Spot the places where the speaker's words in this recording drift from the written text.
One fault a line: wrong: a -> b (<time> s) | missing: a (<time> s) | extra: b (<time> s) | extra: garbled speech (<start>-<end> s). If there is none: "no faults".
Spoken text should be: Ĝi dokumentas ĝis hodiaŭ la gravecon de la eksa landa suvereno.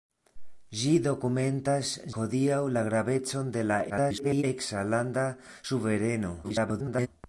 missing: ĝis (1.9 s)
extra: garbled speech (3.9-4.4 s)
extra: garbled speech (6.4-7.1 s)